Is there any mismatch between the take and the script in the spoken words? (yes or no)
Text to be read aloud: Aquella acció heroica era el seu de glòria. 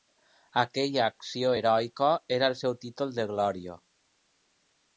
yes